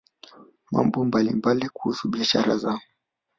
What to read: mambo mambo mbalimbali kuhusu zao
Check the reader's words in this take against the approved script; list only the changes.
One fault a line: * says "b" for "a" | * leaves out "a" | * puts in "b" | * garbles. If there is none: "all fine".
* leaves out "mambo"
* puts in "biashara"